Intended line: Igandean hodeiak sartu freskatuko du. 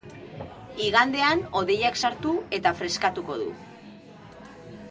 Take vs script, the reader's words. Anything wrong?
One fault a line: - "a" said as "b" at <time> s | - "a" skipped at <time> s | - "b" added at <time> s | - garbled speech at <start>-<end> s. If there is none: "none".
- "eta" added at 2.6 s